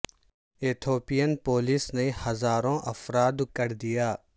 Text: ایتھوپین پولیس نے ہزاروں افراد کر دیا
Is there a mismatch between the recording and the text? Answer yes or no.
no